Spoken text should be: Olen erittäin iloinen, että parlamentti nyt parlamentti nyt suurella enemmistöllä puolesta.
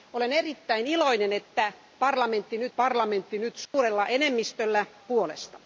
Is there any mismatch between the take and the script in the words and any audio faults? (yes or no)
yes